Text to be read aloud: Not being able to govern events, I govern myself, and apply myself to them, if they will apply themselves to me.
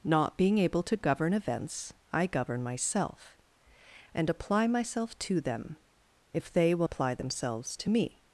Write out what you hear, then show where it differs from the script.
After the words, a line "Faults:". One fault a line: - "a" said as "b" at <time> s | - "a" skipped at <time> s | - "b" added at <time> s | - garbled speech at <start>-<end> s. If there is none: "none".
Not being able to govern events, I govern myself, and apply myself to them, if they will apply themselves to me.
Faults:
none